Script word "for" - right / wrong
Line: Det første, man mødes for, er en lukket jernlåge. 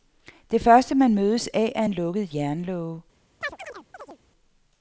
wrong